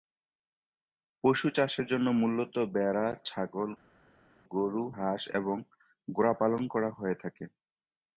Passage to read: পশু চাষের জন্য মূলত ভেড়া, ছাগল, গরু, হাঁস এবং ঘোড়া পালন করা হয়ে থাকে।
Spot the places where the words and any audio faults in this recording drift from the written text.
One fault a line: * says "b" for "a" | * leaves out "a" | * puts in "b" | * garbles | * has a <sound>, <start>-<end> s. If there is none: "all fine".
all fine